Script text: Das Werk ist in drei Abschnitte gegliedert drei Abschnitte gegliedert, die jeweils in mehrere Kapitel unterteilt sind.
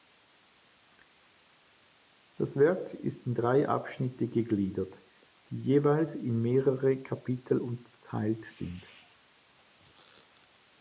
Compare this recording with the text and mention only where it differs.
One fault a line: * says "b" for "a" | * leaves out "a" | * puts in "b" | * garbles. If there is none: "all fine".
* leaves out "drei Abschnitte gegliedert"